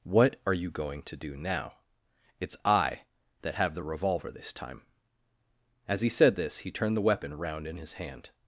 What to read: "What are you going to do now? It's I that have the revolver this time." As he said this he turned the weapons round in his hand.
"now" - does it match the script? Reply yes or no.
yes